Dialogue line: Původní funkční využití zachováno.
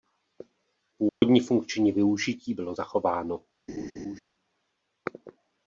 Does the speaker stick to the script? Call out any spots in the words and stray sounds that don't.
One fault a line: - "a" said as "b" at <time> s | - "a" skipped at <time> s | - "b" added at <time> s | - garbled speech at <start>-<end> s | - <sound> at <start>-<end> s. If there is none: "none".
- dropout at 1.1-1.2 s
- "bylo" added at 2.5 s
- laugh at 3.7-4.2 s